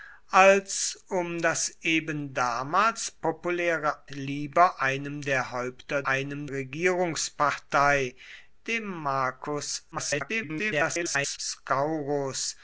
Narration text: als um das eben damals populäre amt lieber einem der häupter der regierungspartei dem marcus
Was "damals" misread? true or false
false